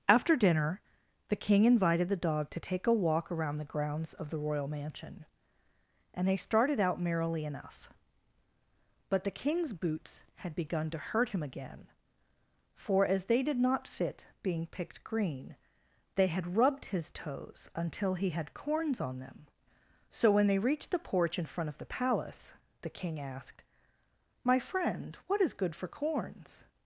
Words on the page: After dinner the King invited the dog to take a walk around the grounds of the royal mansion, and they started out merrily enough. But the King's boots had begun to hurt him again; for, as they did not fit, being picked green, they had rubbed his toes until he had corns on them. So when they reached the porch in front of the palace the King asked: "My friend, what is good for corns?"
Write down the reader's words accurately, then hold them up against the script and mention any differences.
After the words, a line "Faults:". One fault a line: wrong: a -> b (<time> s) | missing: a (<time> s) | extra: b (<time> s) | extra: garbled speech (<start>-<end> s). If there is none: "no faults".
After dinner the King invited the dog to take a walk around the grounds of the royal mansion, and they started out merrily enough. But the King's boots had begun to hurt him again; for, as they did not fit, being picked green, they had rubbed his toes until he had corns on them. So when they reached the porch in front of the palace the King asked: "My friend, what is good for corns?"
Faults:
no faults